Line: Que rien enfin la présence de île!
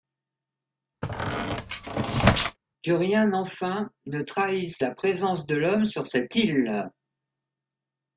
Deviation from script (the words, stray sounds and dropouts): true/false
true